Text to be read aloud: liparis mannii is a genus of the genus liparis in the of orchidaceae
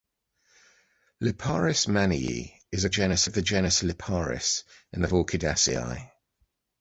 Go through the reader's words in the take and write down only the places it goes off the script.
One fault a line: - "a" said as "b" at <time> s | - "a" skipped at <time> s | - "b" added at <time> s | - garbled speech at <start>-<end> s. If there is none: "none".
none